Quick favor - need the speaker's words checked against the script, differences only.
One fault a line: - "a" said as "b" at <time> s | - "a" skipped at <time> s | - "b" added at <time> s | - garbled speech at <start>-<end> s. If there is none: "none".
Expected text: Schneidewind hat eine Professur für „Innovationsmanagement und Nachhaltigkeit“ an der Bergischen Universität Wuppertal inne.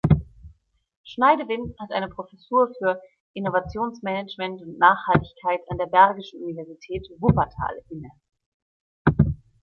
none